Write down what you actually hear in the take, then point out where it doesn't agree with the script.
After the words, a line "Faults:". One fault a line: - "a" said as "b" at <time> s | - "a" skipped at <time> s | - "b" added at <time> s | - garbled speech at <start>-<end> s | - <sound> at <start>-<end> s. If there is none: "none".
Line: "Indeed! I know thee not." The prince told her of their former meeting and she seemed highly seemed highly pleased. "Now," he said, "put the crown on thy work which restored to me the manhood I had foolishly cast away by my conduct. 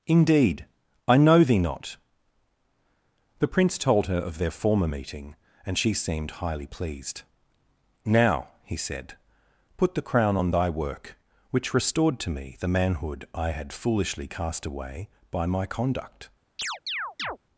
"Indeed! I know thee not." The prince told her of their former meeting and she seemed highly pleased. "Now," he said, "put the crown on thy work which restored to me the manhood I had foolishly cast away by my conduct.
Faults:
- "seemed highly" skipped at 6.7 s
- chirp at 16.6-17.4 s